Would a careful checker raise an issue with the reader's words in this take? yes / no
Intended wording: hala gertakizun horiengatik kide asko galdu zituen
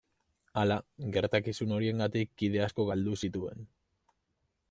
no